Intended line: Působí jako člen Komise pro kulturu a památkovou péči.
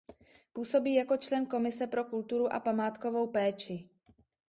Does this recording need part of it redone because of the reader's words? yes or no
no